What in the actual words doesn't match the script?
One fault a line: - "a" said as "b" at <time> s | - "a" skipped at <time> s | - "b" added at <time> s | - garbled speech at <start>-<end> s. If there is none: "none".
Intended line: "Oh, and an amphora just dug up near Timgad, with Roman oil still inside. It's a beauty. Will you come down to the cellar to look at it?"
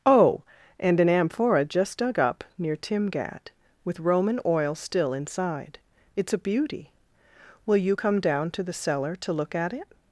none